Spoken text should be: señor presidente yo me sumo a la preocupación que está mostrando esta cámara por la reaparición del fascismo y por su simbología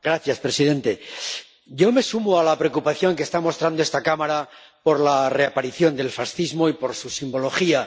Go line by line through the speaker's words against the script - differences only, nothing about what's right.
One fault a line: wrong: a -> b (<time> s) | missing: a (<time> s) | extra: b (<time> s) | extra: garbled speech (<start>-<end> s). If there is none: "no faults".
no faults